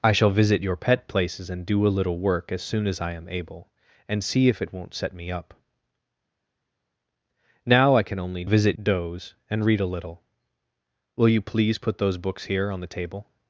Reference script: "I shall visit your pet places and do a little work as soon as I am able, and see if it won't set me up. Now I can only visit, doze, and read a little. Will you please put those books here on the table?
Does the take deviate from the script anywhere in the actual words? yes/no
no